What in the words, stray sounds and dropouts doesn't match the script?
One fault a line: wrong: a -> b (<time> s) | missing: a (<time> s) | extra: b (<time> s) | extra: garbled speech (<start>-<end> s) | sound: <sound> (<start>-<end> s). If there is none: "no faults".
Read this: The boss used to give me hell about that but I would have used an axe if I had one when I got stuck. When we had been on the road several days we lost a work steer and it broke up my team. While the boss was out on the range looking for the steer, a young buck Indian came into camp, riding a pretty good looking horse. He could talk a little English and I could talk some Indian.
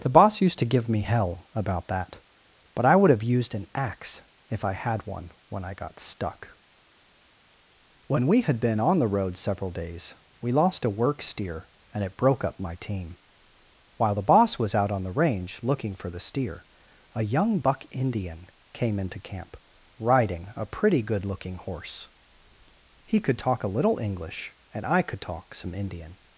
no faults